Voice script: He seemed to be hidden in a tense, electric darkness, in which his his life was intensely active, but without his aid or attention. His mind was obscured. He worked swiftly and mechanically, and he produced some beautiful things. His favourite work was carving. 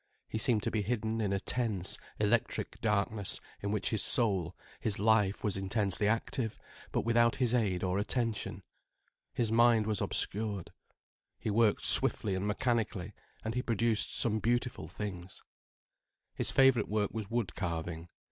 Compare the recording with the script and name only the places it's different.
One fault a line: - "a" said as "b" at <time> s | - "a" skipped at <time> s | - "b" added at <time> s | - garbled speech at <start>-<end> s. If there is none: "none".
- "soul" added at 4.0 s
- "wood" added at 17.3 s